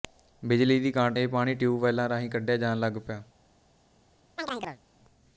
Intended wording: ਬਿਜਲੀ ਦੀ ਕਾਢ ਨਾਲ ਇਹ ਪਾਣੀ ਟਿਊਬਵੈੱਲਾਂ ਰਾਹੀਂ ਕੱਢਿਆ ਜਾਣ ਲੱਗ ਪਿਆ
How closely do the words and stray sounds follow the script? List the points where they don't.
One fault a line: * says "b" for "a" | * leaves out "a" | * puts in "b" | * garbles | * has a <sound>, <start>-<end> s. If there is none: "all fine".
* leaves out "ਨਾਲ"
* has a chirp, 4.4-4.8 s